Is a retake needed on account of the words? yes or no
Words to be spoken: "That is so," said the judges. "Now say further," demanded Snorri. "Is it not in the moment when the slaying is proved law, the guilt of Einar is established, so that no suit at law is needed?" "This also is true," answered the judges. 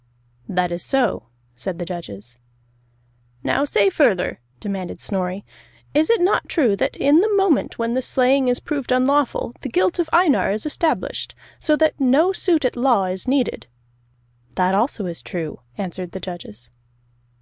yes